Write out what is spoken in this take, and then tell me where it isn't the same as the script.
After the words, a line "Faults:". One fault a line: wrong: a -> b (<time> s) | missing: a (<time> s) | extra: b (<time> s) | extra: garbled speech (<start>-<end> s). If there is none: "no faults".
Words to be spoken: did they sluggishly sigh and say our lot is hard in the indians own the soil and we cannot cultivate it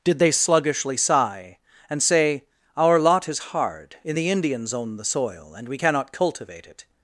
did they sluggishly sigh and say our lot is hard in the indians own the soil and we cannot cultivate it
Faults:
no faults